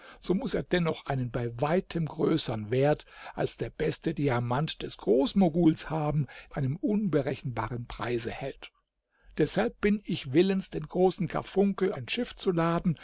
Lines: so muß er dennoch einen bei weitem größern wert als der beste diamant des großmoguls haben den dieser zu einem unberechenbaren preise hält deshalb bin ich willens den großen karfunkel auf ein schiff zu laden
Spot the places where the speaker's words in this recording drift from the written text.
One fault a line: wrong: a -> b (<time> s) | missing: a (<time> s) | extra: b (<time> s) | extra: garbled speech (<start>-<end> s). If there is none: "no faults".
missing: den dieser zu (6.3 s)
missing: auf (11.9 s)